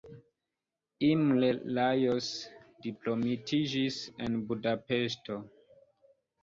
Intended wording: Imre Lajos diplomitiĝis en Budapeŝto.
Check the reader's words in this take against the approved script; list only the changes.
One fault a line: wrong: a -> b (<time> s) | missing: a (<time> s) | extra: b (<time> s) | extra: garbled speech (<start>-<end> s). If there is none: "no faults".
no faults